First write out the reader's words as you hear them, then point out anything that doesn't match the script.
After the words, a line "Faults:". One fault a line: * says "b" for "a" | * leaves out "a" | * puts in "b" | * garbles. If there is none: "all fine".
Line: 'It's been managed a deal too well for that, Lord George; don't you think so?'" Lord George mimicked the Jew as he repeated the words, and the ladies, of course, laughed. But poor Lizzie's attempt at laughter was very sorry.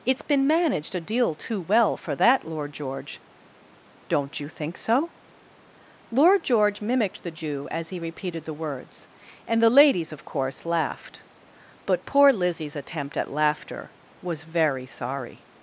'It's been managed a deal too well for that, Lord George; don't you think so?'" Lord George mimicked the Jew as he repeated the words, and the ladies, of course, laughed. But poor Lizzie's attempt at laughter was very sorry.
Faults:
all fine